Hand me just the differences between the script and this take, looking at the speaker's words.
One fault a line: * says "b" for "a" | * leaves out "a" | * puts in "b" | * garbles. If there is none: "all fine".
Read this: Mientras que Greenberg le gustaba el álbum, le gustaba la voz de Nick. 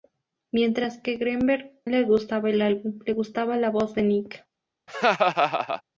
all fine